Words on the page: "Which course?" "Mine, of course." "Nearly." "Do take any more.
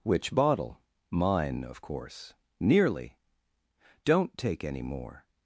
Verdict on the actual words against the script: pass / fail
fail